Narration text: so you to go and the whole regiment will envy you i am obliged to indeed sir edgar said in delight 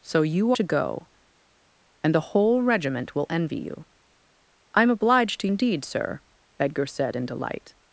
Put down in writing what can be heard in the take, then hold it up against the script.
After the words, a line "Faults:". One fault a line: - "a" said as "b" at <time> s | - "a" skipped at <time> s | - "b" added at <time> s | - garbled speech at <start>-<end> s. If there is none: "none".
so you to go and the whole regiment will envy you i am obliged to indeed sir edgar said in delight
Faults:
none